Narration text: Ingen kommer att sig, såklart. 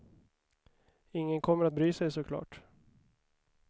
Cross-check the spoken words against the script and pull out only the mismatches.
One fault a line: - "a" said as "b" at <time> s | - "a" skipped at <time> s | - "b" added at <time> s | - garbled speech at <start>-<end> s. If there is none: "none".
- "bry" added at 1.7 s